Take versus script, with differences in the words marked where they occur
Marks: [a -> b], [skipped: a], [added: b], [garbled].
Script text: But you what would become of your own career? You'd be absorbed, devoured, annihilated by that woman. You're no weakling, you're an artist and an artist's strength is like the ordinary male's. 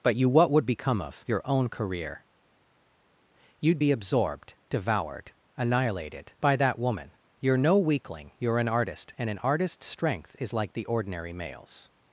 But you what would become of your own career? You'd be absorbed, devoured, annihilated by that woman. You're no weakling, you're an artist and an artist's strength is like the ordinary male's.